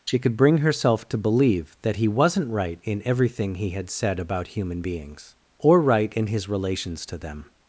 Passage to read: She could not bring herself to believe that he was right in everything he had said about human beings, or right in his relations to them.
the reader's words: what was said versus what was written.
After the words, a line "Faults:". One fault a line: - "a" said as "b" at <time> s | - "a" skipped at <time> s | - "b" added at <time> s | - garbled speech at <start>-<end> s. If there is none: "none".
She could bring herself to believe that he wasn't right in everything he had said about human beings, or right in his relations to them.
Faults:
- "not" skipped at 0.3 s
- "was" said as "wasn't" at 2.1 s